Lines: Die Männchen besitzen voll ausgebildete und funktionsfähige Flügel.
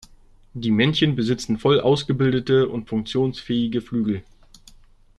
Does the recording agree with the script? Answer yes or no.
yes